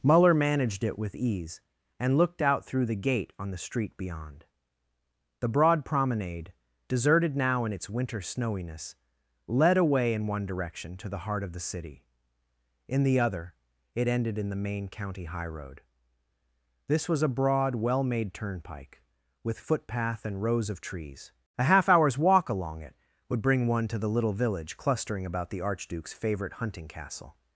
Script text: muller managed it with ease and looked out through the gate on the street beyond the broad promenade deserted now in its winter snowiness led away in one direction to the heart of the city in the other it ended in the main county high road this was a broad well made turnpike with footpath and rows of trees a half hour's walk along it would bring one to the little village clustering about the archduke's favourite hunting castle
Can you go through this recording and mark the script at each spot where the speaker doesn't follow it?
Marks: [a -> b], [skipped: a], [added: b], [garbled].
muller managed it with ease and looked out through the gate on the street beyond the broad promenade deserted now in its winter snowiness led away in one direction to the heart of the city in the other it ended in the main county high road this was a broad well made turnpike with footpath and rows of trees a half hour's walk along it would bring one to the little village clustering about the archduke's favourite hunting castle